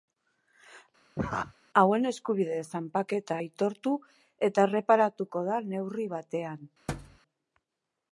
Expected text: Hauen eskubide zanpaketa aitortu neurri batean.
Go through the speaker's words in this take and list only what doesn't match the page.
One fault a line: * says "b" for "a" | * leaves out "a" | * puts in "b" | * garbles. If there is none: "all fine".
* puts in "eta erreparatuko da"